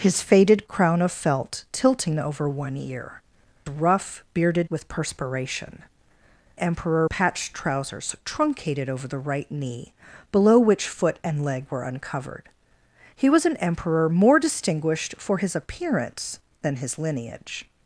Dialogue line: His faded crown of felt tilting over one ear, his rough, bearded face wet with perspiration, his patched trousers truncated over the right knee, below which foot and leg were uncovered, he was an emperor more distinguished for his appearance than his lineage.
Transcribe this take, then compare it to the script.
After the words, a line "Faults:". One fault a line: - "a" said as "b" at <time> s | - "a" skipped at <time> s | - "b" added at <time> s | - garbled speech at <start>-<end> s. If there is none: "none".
His faded crown of felt tilting over one ear, rough, bearded with perspiration, emperor patched trousers truncated over the right knee, below which foot and leg were uncovered, he was an emperor more distinguished for his appearance than his lineage.
Faults:
- "his" skipped at 3.2 s
- "face wet" skipped at 4.7 s
- "his" said as "emperor" at 6.6 s